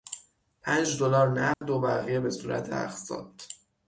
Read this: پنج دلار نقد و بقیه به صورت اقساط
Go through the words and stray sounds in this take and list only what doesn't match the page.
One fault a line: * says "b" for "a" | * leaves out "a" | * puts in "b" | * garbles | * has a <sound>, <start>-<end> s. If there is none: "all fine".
* has a dropout, 1.5-1.6 s